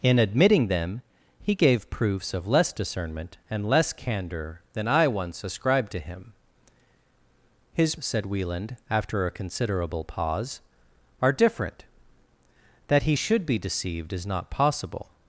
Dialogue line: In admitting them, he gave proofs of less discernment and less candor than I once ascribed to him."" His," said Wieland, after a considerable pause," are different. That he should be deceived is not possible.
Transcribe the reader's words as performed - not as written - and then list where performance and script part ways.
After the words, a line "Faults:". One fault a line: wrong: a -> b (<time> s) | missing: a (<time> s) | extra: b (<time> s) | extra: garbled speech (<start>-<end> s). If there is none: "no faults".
In admitting them, he gave proofs of less discernment and less candor than I once ascribed to him."" His," said Wieland, after a considerable pause," are different. That he should be deceived is not possible.
Faults:
no faults